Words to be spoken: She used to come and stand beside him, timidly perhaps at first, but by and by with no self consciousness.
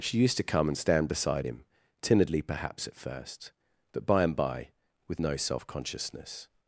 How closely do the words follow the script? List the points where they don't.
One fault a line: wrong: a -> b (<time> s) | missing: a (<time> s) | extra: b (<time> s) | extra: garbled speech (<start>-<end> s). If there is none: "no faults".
no faults